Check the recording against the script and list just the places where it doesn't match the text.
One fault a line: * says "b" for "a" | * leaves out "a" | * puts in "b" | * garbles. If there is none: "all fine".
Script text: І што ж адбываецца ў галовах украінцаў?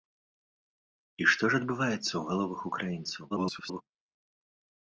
* garbles